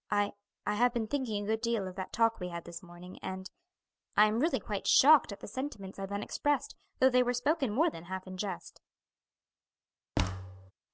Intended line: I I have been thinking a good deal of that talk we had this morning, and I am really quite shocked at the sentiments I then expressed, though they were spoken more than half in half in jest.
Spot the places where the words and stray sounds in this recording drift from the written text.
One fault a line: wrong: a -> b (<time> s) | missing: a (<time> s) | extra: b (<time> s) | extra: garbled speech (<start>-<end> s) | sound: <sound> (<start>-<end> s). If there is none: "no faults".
missing: half in (8.4 s)
sound: thud (10.2-10.7 s)